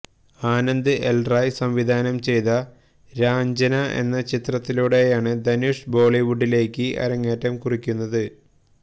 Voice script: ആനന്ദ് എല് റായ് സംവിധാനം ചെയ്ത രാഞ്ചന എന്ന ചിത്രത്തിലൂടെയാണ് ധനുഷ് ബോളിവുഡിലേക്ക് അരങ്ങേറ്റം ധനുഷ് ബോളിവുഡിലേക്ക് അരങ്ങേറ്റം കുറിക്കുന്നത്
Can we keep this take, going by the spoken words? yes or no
no